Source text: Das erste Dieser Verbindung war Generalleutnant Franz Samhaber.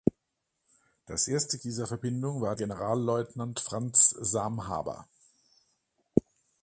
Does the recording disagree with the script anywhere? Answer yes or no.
no